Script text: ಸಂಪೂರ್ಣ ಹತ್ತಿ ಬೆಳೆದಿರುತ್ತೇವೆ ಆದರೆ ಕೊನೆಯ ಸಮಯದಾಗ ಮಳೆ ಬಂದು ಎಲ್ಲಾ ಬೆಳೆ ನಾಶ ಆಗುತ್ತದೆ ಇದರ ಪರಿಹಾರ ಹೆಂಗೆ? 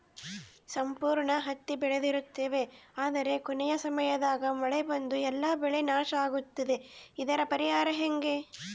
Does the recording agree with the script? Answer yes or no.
yes